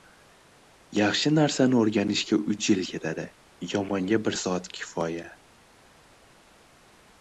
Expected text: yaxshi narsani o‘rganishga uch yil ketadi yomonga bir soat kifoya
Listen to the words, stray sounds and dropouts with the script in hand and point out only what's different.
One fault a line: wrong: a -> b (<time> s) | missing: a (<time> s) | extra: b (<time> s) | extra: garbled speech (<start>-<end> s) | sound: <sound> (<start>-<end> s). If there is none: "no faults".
no faults